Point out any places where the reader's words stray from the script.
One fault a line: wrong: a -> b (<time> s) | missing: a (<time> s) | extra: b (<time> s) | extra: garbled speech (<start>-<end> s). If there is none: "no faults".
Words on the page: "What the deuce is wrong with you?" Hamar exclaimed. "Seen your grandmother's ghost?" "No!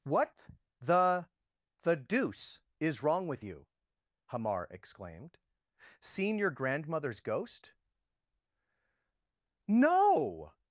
extra: the (1.8 s)